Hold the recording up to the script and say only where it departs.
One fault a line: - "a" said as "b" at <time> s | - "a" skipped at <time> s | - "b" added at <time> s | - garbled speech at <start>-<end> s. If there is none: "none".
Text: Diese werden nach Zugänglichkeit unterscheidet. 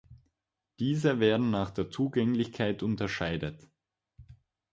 - "der" added at 1.7 s